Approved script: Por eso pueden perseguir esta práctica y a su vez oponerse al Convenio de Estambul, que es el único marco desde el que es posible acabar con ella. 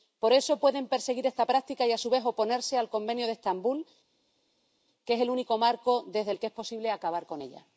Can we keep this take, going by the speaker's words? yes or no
yes